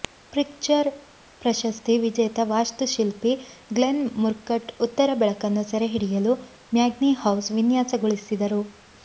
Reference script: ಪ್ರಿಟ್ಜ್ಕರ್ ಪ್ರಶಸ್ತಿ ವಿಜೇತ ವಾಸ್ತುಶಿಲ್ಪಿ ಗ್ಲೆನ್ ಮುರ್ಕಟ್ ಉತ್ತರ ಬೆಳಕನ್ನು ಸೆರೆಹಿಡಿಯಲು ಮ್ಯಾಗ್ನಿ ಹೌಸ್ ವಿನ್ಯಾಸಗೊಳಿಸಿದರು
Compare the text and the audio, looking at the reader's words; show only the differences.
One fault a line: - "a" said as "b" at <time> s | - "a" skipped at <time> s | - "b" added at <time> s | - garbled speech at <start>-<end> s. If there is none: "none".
none